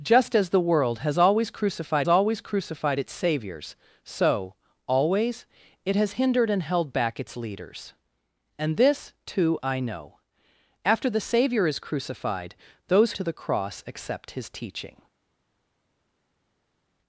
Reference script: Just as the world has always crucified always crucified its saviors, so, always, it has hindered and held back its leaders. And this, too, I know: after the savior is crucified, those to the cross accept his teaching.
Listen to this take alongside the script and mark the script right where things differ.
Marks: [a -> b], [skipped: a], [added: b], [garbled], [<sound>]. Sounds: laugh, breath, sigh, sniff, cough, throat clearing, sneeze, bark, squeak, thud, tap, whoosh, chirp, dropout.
Just as the world has always crucified always crucified its saviors, so, always, it has hindered and held back its leaders. And this, too, I know: after the savior is crucified, those to the cross accept his teaching.